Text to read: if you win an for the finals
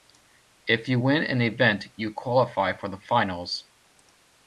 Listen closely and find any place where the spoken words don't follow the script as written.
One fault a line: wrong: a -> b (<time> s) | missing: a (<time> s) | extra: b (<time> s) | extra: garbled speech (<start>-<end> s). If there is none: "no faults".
extra: event you qualify (1.4 s)